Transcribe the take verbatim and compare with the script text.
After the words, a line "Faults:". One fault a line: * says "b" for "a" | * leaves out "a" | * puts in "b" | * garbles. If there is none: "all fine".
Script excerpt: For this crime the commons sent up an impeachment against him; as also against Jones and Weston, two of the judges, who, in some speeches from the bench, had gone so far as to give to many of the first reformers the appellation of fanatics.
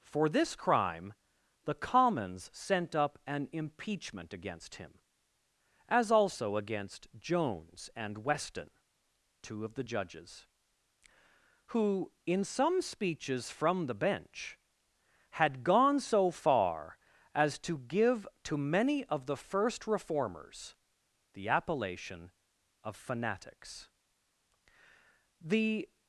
For this crime the commons sent up an impeachment against him; as also against Jones and Weston, two of the judges, who, in some speeches from the bench, had gone so far as to give to many of the first reformers the appellation of fanatics. The
Faults:
* puts in "The"